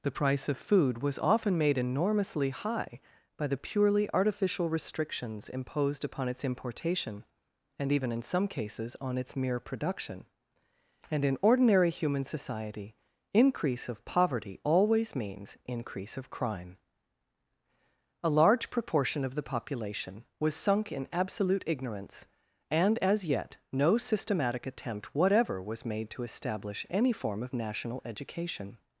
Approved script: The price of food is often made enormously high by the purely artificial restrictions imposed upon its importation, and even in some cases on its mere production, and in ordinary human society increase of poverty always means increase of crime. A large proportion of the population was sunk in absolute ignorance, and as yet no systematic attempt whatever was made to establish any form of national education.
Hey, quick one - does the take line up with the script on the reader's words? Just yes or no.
no